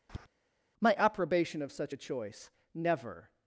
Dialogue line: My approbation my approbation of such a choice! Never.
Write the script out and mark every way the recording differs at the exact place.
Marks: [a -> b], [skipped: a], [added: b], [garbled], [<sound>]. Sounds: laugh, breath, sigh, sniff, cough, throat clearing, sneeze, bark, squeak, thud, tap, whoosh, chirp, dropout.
[tap] My approbation [skipped: my approbation] of such a choice! Never.